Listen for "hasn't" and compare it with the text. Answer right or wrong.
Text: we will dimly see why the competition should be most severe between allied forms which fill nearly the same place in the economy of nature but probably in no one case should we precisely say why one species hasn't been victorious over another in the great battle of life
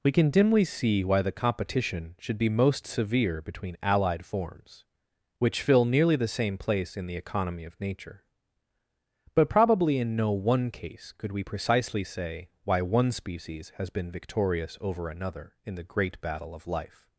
wrong